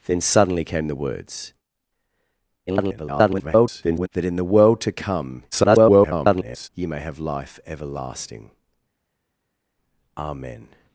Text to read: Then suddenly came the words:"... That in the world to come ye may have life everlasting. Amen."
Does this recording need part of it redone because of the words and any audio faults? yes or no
yes